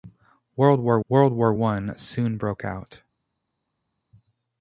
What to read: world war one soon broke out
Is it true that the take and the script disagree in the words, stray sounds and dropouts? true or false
true